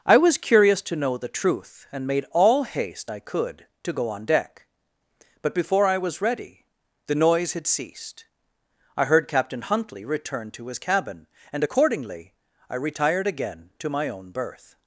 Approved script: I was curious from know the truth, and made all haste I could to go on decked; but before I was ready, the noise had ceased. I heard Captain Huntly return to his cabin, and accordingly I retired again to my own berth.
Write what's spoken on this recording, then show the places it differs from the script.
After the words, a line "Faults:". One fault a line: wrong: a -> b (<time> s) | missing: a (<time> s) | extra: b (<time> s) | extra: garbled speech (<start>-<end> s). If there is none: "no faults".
I was curious to know the truth, and made all haste I could to go on deck; but before I was ready, the noise had ceased. I heard Captain Huntly return to his cabin, and accordingly I retired again to my own berth.
Faults:
wrong: from -> to (0.8 s)
wrong: decked -> deck (4.2 s)